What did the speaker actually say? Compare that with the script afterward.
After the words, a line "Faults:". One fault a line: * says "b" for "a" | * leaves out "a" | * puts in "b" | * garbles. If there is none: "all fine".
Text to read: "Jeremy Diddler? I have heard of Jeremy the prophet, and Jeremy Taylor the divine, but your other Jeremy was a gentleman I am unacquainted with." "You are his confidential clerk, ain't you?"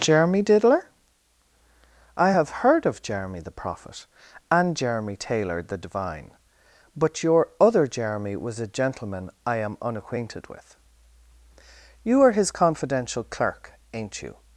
"Jeremy Diddler? I have heard of Jeremy the prophet, and Jeremy Taylor the divine, but your other Jeremy was a gentleman I am unacquainted with." "You are his confidential clerk, ain't you?"
Faults:
all fine